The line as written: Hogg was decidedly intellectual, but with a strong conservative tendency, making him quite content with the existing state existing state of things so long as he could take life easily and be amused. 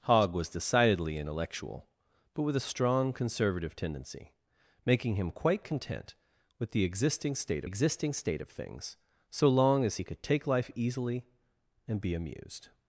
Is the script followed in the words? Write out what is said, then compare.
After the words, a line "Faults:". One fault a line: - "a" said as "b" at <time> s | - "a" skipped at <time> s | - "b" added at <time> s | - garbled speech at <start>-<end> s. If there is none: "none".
Hogg was decidedly intellectual, but with a strong conservative tendency, making him quite content with the existing state existing state of things so long as he could take life easily and be amused.
Faults:
none